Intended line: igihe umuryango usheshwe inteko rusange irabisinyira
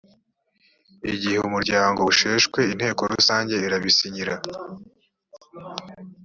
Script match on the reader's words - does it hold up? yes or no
yes